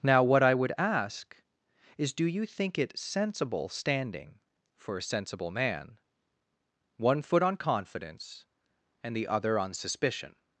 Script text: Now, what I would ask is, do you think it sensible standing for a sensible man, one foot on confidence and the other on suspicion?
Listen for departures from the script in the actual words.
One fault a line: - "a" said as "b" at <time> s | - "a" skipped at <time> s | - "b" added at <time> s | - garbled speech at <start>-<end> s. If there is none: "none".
none